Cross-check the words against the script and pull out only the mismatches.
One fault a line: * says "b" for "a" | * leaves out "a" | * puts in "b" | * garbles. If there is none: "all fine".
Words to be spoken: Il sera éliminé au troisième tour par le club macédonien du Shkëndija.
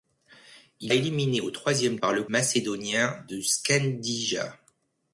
* leaves out "sera"
* leaves out "tour"
* leaves out "club"